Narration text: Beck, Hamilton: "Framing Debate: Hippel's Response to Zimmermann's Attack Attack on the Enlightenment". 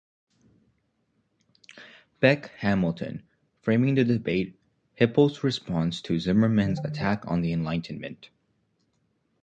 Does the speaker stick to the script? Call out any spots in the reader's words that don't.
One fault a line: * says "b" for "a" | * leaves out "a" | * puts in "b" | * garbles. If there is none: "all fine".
* puts in "the"
* leaves out "Attack"